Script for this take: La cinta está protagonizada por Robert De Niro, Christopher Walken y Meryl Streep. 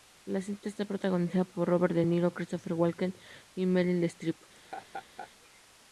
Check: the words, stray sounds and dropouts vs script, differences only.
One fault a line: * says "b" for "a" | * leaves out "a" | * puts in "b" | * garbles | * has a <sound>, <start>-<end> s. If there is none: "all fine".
* has a laugh, 4.5-5.3 s